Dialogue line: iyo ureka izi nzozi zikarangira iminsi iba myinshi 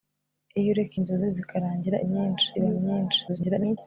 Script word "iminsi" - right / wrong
wrong